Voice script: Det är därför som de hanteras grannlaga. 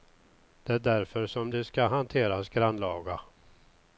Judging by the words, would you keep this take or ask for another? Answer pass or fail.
fail